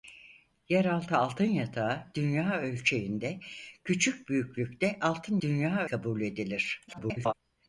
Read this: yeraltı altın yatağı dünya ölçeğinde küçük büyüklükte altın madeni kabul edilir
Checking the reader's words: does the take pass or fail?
fail